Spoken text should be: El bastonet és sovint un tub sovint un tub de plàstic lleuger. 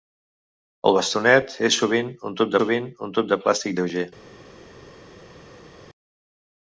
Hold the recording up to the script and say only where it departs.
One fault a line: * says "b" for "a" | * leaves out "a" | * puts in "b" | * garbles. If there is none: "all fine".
all fine